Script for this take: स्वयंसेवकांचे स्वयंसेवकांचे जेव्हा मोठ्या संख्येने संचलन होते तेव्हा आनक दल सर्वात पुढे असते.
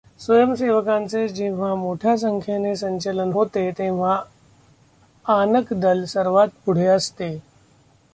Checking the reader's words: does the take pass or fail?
fail